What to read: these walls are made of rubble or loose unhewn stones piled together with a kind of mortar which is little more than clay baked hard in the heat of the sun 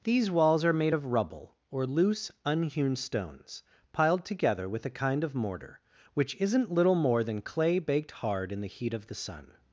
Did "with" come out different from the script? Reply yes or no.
no